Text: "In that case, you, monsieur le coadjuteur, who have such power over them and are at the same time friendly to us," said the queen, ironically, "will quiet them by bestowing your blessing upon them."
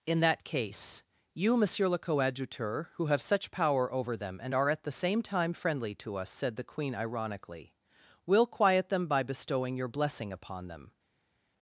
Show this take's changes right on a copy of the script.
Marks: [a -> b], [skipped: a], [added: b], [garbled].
"In that case, you, monsieur le coadjuteur, who have such power over them and are at the same time friendly to us," said the queen, ironically, "will quiet them by bestowing your blessing upon them."